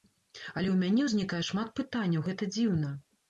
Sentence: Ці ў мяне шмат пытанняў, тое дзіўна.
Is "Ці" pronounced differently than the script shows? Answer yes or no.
yes